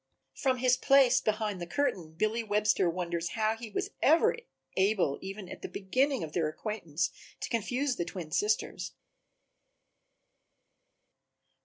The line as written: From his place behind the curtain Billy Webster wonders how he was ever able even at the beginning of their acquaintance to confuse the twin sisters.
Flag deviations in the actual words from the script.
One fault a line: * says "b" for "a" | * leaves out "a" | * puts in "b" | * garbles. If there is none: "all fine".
all fine